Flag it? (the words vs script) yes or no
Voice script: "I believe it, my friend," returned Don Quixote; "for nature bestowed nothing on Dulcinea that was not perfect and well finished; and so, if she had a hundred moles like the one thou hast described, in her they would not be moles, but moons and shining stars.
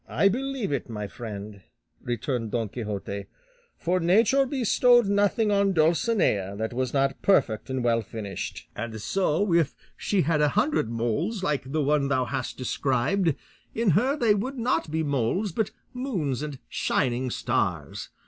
no